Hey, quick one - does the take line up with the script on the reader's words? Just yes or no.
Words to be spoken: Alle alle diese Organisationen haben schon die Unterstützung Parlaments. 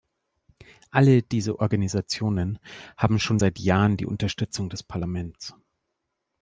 no